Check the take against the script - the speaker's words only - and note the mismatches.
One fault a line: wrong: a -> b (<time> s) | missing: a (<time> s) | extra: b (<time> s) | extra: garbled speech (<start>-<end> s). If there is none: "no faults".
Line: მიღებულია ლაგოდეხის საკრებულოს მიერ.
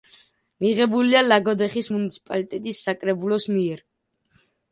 extra: მუნიციპალიტეტის (2.0 s)